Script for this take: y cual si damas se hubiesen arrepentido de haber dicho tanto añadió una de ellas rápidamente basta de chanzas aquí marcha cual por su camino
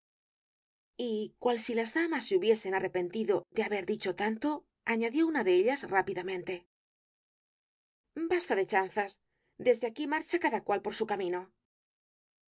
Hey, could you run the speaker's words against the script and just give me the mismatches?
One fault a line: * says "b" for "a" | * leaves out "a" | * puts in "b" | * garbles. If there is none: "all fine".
* puts in "las"
* puts in "desde"
* puts in "cada"